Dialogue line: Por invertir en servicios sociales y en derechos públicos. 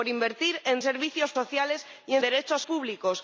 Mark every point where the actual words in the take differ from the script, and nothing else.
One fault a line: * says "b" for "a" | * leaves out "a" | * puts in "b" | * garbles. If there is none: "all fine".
all fine